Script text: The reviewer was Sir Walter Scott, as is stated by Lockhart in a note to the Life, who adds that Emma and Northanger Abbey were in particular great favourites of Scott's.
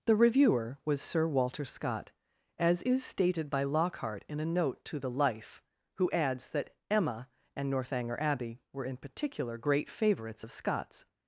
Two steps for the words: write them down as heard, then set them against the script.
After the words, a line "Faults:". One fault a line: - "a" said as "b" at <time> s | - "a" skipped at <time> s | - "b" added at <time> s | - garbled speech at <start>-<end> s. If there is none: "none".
The reviewer was Sir Walter Scott, as is stated by Lockhart in a note to the Life, who adds that Emma and Northanger Abbey were in particular great favourites of Scott's.
Faults:
none